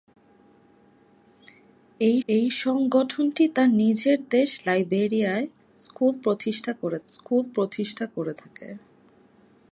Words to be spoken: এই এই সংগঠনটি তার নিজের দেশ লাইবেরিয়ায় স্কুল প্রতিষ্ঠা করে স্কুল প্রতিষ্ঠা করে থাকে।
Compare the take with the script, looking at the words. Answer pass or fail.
pass